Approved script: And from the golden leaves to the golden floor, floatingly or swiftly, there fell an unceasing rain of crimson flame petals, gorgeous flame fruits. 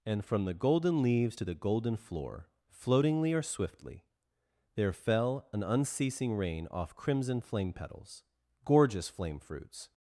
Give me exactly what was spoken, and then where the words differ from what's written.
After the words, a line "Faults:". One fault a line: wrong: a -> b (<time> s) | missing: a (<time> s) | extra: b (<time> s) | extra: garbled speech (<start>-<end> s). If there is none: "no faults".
And from the golden leaves to the golden floor, floatingly or swiftly, there fell an unceasing rain off crimson flame petals, gorgeous flame fruits.
Faults:
wrong: of -> off (6.7 s)